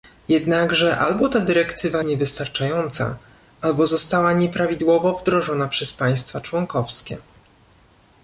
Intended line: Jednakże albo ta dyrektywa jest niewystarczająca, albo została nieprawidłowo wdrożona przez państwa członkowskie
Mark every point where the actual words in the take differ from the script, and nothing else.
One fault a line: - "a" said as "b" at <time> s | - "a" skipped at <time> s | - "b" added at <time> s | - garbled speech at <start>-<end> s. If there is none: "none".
- "jest" skipped at 2.0 s